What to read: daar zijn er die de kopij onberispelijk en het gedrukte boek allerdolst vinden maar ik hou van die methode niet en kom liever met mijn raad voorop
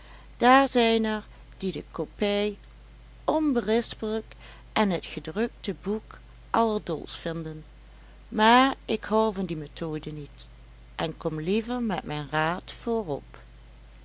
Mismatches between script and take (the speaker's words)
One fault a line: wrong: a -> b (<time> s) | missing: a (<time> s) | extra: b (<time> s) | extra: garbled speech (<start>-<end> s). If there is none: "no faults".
no faults